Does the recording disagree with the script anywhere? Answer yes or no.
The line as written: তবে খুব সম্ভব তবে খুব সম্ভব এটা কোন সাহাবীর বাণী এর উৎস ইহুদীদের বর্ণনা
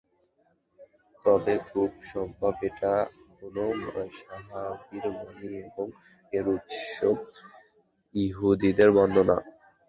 yes